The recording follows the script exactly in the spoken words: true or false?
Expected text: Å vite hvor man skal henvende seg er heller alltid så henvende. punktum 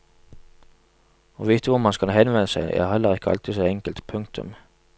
false